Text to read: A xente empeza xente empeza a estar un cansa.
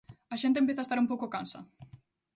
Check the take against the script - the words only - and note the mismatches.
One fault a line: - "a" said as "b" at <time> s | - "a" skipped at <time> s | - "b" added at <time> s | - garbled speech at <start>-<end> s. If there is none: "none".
- "xente empeza" skipped at 0.8 s
- "pouco" added at 1.1 s